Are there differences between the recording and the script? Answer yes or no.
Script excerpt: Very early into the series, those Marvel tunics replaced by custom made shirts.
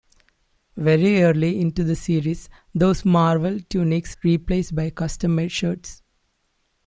no